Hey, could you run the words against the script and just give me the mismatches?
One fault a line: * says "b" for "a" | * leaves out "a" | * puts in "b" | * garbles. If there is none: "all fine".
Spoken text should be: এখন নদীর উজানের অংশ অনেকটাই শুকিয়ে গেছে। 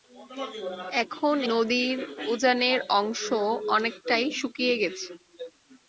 all fine